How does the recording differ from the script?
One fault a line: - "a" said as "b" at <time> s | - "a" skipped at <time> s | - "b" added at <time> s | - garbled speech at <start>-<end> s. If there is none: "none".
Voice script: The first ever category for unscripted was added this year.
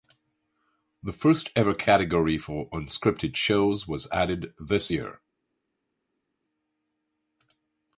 - "shows" added at 3.3 s